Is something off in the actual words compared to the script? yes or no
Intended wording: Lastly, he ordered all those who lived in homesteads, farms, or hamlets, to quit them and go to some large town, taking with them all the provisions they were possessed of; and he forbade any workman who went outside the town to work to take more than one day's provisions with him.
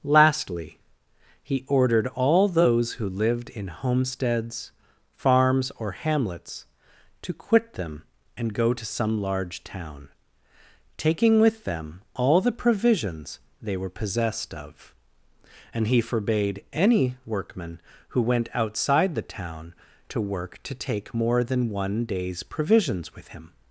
no